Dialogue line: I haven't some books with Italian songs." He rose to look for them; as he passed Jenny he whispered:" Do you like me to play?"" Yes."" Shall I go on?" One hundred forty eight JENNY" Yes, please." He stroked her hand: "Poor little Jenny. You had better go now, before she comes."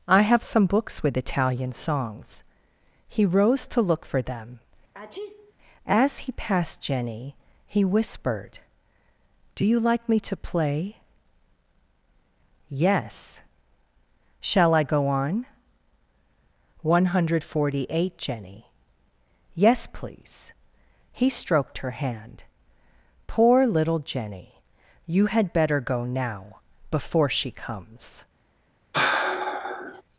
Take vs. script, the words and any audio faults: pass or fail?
fail